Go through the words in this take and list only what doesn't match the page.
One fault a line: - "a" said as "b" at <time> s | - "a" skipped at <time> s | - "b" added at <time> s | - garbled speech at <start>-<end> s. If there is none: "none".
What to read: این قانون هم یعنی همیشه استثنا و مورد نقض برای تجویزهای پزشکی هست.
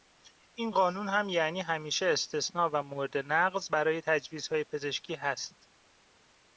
none